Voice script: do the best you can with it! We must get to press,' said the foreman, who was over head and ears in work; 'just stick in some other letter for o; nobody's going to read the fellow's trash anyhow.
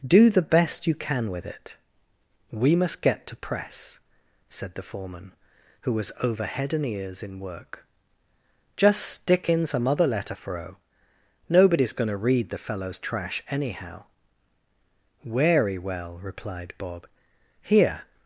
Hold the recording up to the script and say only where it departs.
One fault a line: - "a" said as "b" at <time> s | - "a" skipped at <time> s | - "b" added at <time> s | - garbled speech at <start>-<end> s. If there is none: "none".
- "Wery well replied Bob here" added at 15.2 s